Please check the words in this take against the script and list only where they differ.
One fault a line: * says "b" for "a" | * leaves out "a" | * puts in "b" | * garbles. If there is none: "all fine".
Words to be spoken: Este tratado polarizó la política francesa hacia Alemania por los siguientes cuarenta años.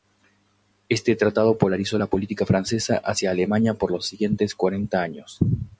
all fine